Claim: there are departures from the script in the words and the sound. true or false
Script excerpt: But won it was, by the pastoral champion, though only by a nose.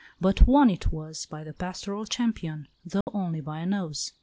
true